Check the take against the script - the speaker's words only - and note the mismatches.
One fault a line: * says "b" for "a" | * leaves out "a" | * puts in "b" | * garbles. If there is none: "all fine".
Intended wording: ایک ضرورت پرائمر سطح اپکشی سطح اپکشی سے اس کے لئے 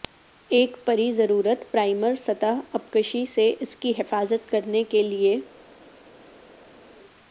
* puts in "پری"
* says "سے اس کی حفاظت کرنے" for "سطح اپکشی سے اس"